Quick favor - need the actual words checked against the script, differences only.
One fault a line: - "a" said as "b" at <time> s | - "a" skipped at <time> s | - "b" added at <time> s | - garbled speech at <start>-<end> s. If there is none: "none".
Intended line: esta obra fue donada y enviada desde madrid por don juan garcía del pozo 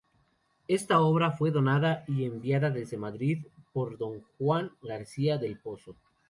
none